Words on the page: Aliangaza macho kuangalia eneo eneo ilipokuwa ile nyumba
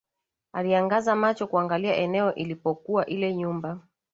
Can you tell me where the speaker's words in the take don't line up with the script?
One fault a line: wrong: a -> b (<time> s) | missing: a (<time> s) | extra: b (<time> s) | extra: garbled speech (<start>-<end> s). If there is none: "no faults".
missing: eneo (2.4 s)